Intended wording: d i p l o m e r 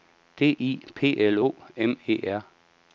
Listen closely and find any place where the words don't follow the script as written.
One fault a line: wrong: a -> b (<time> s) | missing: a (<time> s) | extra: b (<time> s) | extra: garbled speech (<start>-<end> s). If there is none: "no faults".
no faults